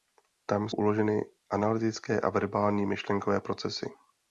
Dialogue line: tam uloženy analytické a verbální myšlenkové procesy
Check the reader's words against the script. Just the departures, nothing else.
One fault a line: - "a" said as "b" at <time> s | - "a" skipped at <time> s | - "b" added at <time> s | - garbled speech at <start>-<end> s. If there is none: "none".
none